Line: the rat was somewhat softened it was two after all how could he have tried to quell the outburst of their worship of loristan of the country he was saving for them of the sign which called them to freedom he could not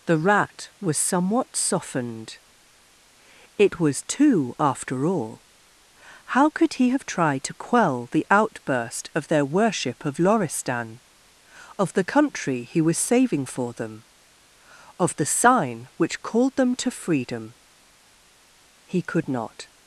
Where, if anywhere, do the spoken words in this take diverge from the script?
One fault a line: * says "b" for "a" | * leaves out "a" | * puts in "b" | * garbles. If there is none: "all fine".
all fine